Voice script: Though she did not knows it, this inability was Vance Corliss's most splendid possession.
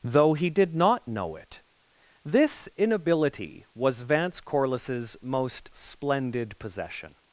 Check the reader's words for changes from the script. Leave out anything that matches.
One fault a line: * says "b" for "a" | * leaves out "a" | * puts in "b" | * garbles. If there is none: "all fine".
* says "he" for "she"
* says "know" for "knows"